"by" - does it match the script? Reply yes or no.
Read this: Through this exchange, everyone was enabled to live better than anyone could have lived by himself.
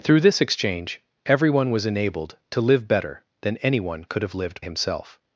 no